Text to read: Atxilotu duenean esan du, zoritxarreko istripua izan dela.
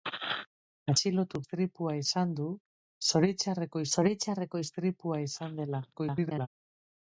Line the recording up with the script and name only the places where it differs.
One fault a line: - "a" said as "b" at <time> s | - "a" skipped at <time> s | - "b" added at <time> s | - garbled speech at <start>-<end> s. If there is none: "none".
- "duenean" said as "istripua" at 1.4 s
- "zoritxarreko" added at 4.0 s
- garbled speech at 5.9-6.5 s